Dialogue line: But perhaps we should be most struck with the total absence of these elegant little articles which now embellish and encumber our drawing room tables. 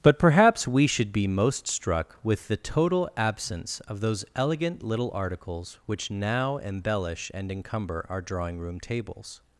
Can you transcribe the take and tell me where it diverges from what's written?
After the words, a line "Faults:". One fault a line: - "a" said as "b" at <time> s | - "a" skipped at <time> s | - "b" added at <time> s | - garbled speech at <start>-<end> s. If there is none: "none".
But perhaps we should be most struck with the total absence of those elegant little articles which now embellish and encumber our drawing room tables.
Faults:
- "these" said as "those" at 4.0 s